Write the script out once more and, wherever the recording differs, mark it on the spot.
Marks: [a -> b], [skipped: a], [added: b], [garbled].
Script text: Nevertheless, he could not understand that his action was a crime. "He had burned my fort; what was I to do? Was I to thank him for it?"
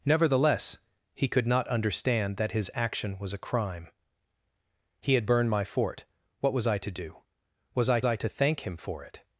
Nevertheless, he could not understand that his action was a crime. "He had burned my fort; what was I to do? Was I [added: I] to thank him for it?"